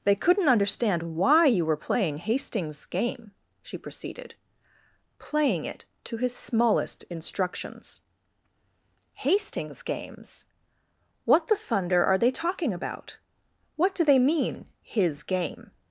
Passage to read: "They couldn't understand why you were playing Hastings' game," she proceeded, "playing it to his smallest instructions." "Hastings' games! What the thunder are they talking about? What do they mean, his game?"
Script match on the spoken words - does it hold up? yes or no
yes